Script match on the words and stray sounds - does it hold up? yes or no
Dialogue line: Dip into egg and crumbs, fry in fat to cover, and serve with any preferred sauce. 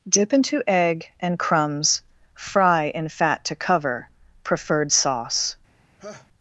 no